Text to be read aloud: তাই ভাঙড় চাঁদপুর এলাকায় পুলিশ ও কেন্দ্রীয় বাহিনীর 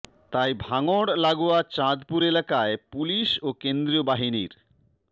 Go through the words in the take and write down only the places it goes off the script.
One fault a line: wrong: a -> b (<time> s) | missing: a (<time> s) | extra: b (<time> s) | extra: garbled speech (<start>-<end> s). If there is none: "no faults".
extra: লাগোয়া (1.2 s)